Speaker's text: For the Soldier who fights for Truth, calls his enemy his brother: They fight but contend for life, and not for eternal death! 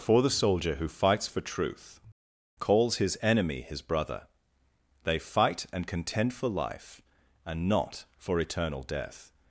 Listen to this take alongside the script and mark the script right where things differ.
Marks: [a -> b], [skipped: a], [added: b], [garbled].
For the Soldier who fights for Truth, calls his enemy his brother: They fight [but -> and] contend for life, and not for eternal death!